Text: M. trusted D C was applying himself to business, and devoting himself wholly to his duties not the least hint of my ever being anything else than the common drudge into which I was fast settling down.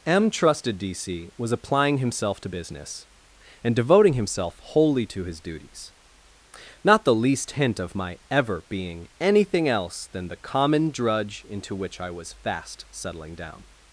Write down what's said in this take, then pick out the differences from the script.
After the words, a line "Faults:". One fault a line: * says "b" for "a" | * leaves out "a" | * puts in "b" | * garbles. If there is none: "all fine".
M. trusted D C was applying himself to business, and devoting himself wholly to his duties not the least hint of my ever being anything else than the common drudge into which I was fast settling down.
Faults:
all fine